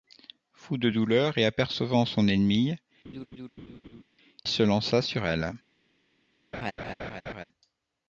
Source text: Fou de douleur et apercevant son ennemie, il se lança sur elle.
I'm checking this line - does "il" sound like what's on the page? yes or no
no